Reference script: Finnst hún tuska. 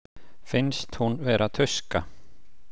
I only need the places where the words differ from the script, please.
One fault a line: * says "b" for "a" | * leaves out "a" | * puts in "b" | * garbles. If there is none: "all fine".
* puts in "vera"